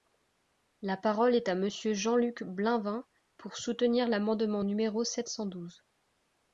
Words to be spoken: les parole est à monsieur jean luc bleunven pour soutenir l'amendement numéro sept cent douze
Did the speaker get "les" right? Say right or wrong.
wrong